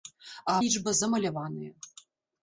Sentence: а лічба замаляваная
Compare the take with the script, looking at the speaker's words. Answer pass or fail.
pass